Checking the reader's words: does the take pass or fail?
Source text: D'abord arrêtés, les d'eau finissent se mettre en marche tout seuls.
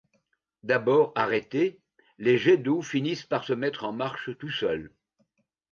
fail